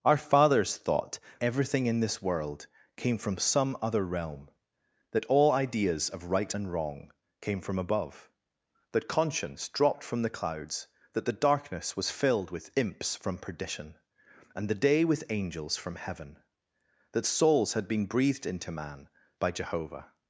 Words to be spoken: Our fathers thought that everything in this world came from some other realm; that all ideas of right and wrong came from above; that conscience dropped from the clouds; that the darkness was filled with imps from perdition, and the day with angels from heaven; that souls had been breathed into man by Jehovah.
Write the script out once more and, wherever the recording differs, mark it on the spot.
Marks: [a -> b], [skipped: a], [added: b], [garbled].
Our fathers thought [skipped: that] everything in this world came from some other realm; that all ideas of right and wrong came from above; that conscience dropped from the clouds; that the darkness was filled with imps from perdition, and the day with angels from heaven; that souls had been breathed into man by Jehovah.